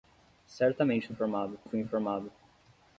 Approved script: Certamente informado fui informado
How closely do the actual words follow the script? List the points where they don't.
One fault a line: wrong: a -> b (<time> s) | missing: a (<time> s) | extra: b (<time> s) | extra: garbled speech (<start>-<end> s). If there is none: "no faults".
no faults